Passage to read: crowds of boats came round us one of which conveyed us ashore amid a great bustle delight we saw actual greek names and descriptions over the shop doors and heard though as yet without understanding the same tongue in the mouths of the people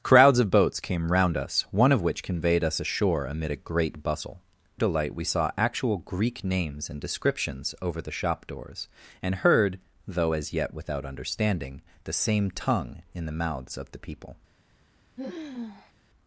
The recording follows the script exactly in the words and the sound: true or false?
false